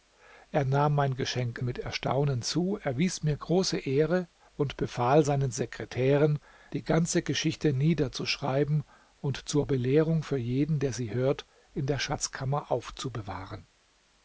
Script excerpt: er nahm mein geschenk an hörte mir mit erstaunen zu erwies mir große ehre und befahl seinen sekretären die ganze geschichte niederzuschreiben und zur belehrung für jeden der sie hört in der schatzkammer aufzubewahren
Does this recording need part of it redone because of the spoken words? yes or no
yes